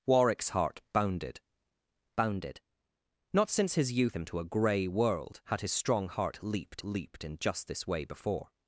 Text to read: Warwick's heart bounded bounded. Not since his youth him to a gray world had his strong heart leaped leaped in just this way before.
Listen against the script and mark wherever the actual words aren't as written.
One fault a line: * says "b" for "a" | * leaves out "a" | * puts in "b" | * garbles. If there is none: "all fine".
all fine